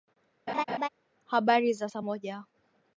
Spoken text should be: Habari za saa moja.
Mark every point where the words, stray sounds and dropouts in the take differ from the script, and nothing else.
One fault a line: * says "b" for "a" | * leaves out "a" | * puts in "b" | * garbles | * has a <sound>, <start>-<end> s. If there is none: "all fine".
* has a laugh, 0.5-0.9 s